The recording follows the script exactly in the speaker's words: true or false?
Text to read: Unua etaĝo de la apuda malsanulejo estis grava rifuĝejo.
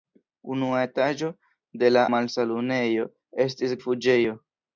false